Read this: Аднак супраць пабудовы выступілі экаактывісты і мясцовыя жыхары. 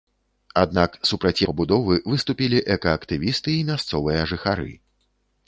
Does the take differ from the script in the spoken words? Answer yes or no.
no